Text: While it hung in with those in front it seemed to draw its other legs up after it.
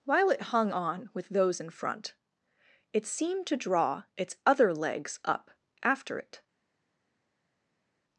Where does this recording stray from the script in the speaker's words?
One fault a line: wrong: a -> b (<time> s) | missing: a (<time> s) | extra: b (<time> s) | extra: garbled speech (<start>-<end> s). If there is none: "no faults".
wrong: in -> on (0.7 s)